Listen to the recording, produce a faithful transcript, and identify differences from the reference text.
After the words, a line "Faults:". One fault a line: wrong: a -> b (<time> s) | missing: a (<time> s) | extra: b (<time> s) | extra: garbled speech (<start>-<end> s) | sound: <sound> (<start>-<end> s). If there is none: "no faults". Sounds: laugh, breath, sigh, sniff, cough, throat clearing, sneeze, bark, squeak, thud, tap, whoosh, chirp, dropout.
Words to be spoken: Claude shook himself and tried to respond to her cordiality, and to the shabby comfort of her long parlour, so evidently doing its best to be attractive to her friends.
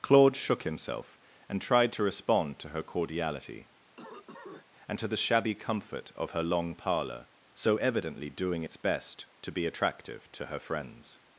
Claude shook himself and tried to respond to her cordiality, and to the shabby comfort of her long parlour, so evidently doing its best to be attractive to her friends.
Faults:
sound: cough (4.0-4.6 s)